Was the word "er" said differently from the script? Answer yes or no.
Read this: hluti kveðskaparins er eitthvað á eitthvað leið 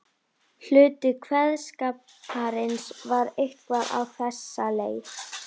yes